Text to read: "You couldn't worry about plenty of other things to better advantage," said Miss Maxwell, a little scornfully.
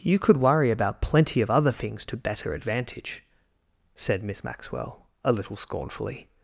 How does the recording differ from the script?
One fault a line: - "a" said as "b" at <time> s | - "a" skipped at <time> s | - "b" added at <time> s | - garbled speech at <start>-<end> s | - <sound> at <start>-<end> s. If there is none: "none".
- "couldn't" said as "could" at 0.2 s